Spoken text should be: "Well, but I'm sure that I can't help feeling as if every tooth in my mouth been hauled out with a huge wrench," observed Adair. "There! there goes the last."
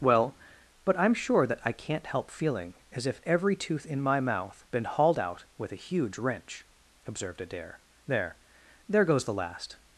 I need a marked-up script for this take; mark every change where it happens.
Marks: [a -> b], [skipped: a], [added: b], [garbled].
"Well, but I'm sure that I can't help feeling as if every tooth in my mouth been hauled out with a huge wrench," observed Adair. "There! there goes the last."